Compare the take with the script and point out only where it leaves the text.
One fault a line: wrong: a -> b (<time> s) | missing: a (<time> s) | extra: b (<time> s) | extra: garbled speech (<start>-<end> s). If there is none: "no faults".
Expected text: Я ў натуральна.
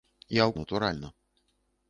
no faults